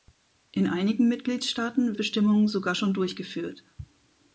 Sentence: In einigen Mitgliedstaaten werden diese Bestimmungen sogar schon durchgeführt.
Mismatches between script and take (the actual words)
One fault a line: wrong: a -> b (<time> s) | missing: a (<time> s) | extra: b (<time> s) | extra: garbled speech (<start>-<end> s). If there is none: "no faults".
missing: werden diese (2.0 s)